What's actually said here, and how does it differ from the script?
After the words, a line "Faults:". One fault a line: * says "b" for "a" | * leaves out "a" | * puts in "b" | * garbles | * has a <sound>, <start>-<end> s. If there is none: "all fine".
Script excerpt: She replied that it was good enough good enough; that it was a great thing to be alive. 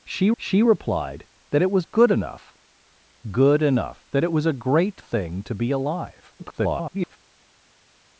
She she replied that it was good enough good enough; that it was a great thing to be alive. [garbled]
Faults:
* puts in "she"
* garbles